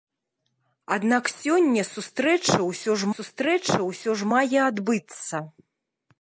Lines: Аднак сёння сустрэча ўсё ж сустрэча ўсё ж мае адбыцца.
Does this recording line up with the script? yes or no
yes